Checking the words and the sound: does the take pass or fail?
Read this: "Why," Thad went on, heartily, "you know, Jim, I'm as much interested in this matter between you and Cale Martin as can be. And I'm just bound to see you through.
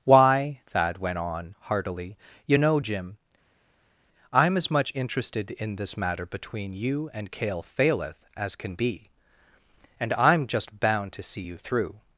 fail